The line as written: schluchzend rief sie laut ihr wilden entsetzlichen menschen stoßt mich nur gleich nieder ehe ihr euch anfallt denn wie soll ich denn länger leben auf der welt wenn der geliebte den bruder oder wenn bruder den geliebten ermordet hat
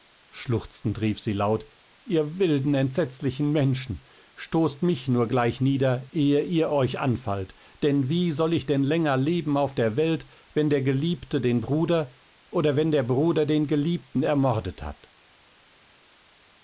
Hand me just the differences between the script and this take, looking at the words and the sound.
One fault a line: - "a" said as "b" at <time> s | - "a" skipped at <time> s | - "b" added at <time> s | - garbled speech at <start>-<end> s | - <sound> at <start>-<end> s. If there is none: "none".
- "der" added at 12.9 s